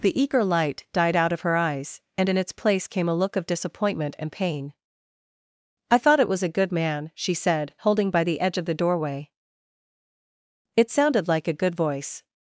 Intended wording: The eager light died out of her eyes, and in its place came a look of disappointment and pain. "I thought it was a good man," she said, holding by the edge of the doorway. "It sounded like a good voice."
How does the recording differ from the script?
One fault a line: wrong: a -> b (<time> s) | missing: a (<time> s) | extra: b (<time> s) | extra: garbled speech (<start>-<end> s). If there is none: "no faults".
no faults